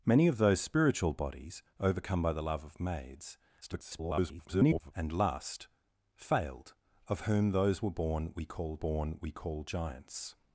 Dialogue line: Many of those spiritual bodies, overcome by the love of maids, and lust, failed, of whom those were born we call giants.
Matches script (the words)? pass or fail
fail